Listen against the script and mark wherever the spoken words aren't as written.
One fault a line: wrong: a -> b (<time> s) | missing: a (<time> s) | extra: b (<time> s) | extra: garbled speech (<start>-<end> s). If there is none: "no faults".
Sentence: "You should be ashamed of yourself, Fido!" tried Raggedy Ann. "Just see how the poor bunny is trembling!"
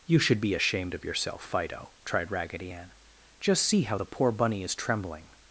no faults